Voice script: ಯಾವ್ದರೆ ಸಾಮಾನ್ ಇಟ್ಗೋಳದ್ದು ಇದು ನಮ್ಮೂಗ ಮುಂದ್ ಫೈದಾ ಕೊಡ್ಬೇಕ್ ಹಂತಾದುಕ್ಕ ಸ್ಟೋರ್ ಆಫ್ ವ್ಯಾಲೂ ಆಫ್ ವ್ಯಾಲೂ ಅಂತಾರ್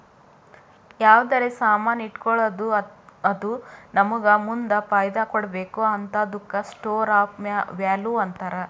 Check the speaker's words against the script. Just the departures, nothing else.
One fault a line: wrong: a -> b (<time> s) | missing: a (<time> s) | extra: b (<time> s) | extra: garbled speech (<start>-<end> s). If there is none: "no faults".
wrong: ಇದು -> ಅದು (3.2 s)
missing: ಆಫ್ ವ್ಯಾಲೂ (8.1 s)